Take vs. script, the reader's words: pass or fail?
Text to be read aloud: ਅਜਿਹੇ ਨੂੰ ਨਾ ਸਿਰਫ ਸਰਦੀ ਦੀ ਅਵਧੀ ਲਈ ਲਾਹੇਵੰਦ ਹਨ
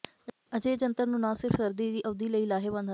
fail